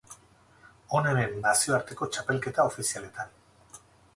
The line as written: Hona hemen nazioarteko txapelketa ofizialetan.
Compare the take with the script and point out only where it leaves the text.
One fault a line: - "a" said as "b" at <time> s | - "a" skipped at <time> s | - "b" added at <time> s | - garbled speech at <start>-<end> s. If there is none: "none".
none